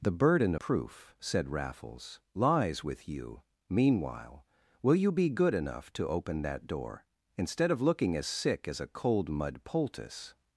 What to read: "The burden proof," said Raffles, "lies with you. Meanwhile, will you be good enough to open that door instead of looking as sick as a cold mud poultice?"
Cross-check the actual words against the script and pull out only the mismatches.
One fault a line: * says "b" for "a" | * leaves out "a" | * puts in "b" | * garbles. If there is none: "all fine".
all fine